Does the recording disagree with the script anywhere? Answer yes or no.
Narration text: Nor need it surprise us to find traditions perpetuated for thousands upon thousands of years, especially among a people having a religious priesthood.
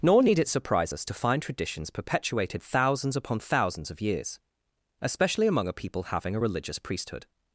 yes